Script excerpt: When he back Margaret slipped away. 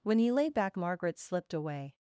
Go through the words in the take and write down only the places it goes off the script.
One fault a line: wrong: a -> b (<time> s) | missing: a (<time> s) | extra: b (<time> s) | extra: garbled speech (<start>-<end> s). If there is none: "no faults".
extra: lay (0.3 s)